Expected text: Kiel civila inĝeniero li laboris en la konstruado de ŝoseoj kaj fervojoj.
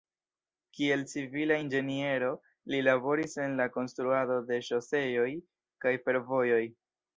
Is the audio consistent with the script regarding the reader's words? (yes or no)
yes